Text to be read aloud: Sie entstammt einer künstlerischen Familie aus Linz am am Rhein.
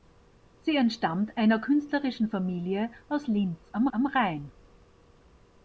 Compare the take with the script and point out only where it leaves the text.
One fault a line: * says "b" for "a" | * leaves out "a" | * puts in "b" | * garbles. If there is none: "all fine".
all fine